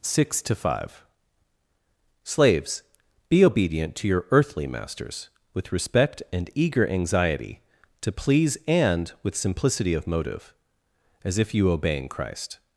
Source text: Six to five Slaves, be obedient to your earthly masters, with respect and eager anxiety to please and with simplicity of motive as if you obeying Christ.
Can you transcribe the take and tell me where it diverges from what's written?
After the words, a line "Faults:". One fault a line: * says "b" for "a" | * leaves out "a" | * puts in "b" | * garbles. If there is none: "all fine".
Six to five Slaves, be obedient to your earthly masters, with respect and eager anxiety to please and with simplicity of motive as if you obeying Christ.
Faults:
all fine